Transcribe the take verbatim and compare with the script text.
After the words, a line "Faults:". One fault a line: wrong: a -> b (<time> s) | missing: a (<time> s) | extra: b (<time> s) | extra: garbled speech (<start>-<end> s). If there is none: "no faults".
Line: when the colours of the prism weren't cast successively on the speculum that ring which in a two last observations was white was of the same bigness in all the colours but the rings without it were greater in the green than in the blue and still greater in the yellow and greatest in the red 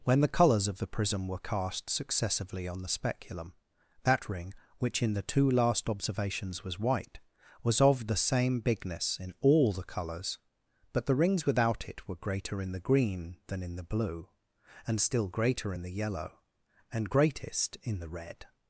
when the colours of the prism were cast successively on the speculum that ring which in the two last observations was white was of the same bigness in all the colours but the rings without it were greater in the green than in the blue and still greater in the yellow and greatest in the red
Faults:
wrong: weren't -> were (1.3 s)
wrong: a -> the (5.1 s)